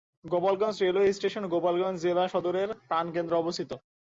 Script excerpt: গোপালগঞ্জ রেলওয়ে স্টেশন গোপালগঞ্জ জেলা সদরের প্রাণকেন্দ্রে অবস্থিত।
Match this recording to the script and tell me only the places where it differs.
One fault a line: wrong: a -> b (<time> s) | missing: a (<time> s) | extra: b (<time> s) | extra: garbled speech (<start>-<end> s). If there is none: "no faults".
no faults